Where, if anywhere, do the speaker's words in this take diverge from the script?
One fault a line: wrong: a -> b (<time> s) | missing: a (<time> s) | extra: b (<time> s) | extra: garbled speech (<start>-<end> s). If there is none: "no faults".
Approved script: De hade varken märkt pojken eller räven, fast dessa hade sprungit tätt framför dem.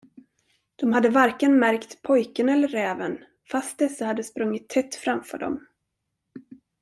no faults